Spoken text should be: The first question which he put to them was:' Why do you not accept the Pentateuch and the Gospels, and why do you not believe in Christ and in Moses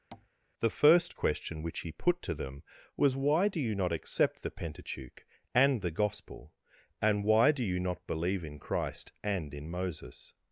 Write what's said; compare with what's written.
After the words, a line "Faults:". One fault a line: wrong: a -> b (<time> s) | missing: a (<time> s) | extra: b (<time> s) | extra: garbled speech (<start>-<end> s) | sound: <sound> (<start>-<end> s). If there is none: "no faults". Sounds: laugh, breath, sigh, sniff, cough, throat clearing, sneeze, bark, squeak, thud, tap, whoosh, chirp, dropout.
The first question which he put to them was:' Why do you not accept the Pentateuch and the Gospel, and why do you not believe in Christ and in Moses
Faults:
sound: tap (0.1-0.3 s)
wrong: Gospels -> Gospel (5.9 s)